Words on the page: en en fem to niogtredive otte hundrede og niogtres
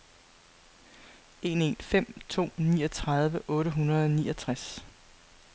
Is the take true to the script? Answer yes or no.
yes